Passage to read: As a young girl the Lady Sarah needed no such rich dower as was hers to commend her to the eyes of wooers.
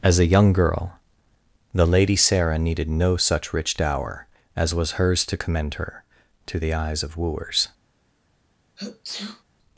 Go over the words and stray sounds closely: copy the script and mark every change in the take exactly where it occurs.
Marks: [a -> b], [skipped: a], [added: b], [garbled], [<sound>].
As a young girl the Lady Sarah needed no such rich dower as was hers to commend her to the eyes of wooers. [sneeze]